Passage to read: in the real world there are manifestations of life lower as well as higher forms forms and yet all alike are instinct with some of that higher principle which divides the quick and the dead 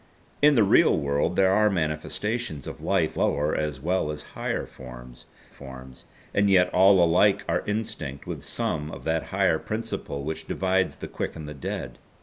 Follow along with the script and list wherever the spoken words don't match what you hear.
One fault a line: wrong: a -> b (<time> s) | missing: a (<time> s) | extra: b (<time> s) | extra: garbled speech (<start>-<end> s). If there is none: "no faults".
no faults